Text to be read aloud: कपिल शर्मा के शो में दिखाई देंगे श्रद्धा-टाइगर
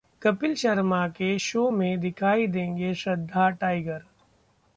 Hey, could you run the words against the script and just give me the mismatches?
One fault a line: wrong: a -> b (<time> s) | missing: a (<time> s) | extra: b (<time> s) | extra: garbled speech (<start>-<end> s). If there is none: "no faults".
no faults